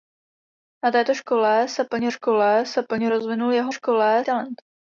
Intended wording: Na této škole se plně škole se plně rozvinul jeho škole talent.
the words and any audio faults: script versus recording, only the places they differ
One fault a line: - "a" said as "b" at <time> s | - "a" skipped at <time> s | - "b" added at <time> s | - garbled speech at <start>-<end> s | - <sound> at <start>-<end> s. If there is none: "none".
none